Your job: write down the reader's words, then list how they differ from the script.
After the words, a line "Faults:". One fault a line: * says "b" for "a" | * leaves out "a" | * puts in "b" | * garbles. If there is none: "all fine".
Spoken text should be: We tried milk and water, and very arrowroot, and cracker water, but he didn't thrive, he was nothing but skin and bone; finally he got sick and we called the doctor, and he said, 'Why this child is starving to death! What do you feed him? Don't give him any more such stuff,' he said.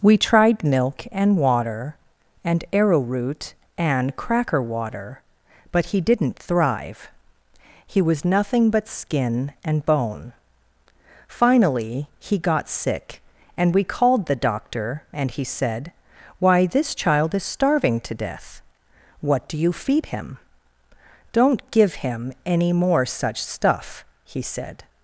We tried milk and water, and arrowroot, and cracker water, but he didn't thrive, he was nothing but skin and bone; finally he got sick and we called the doctor, and he said, 'Why this child is starving to death! What do you feed him? Don't give him any more such stuff,' he said.
Faults:
* leaves out "very"